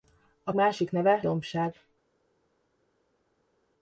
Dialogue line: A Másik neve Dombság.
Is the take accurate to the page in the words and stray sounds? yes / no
yes